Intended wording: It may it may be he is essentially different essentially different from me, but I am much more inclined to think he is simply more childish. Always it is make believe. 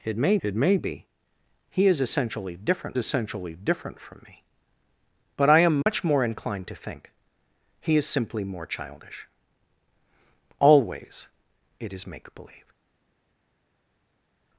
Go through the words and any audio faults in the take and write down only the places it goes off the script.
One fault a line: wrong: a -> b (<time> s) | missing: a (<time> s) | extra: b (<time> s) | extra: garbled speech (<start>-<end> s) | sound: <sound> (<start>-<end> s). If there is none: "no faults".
no faults